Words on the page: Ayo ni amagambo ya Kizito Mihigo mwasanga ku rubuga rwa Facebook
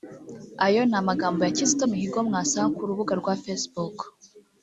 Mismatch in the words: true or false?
false